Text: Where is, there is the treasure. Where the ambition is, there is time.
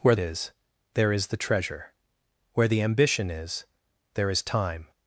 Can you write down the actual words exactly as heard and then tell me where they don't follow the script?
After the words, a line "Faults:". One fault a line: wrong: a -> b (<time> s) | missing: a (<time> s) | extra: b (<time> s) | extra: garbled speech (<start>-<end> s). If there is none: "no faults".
Where is, there is the treasure. Where the ambition is, there is time.
Faults:
no faults